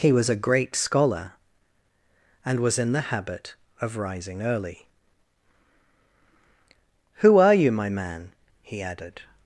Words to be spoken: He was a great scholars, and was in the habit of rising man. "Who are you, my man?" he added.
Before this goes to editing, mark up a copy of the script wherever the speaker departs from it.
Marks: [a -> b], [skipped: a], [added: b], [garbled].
He was a great [scholars, -> scholar] and was in the habit of rising [man. -> early] "Who are you, my man?" he added.